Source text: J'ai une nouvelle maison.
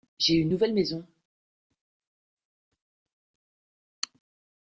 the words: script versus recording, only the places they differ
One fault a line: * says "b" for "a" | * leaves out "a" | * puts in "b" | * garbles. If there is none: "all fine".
all fine